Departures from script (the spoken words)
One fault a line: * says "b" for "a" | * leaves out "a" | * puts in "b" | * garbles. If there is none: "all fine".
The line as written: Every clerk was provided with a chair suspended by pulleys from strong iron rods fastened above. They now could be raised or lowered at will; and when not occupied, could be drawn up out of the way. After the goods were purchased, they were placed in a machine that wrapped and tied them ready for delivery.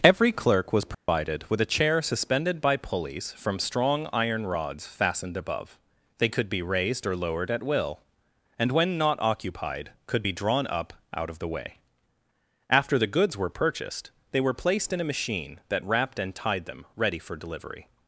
* leaves out "now"